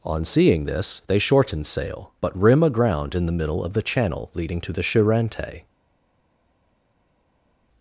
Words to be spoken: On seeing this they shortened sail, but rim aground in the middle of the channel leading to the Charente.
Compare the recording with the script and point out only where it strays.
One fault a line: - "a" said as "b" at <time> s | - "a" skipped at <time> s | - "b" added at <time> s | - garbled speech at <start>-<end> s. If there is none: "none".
- "shortened" said as "shorten" at 1.2 s